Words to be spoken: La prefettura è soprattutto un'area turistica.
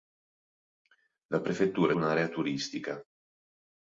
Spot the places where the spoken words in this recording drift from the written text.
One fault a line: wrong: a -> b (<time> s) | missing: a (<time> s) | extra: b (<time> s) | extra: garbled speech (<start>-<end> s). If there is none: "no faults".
missing: soprattutto (1.9 s)